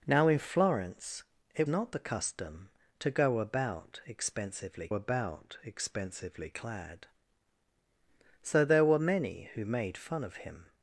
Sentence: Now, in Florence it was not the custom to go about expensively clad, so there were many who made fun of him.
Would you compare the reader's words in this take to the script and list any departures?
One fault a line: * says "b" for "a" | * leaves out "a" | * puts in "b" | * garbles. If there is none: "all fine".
* leaves out "was"
* puts in "about expensively"